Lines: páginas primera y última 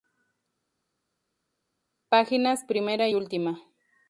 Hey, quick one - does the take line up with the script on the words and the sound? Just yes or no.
no